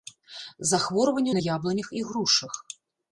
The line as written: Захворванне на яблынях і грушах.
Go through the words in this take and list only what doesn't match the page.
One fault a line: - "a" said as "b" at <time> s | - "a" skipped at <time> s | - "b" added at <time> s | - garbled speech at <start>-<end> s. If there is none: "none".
none